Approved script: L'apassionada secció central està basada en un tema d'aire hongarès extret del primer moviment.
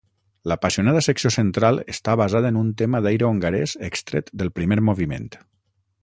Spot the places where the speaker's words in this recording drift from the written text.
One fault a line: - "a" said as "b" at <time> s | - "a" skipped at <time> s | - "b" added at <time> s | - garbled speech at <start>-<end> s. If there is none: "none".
none